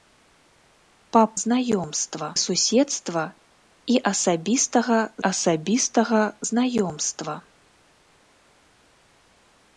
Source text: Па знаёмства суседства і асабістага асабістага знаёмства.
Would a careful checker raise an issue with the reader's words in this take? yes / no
no